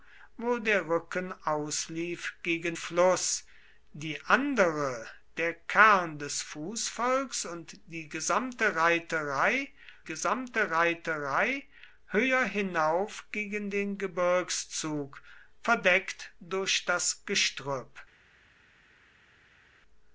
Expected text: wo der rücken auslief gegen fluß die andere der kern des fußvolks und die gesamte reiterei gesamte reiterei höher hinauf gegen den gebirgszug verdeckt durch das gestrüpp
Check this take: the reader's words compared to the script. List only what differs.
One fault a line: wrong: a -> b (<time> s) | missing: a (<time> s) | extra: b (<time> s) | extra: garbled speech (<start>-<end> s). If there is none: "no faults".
no faults